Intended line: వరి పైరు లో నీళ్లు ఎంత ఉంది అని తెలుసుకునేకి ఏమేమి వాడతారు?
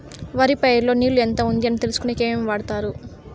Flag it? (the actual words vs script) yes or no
no